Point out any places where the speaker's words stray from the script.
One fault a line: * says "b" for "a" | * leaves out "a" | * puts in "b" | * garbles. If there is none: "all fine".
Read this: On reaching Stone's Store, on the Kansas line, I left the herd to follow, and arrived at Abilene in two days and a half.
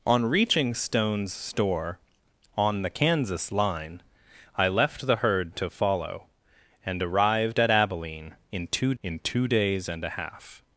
* puts in "in two"